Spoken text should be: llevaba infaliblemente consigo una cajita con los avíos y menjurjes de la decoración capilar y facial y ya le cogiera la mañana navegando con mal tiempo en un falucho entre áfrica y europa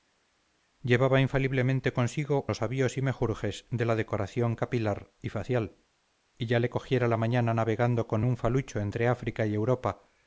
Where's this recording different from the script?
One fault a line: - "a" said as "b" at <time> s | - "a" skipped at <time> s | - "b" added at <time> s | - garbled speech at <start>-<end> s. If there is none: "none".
- "una cajita con" skipped at 2.5 s
- "mal tiempo en" skipped at 8.2 s